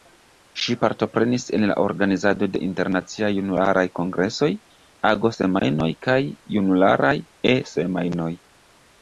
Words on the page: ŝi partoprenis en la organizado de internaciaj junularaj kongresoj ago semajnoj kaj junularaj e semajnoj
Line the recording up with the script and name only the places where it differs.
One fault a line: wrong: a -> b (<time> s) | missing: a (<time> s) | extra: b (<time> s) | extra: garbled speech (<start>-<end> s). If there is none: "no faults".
no faults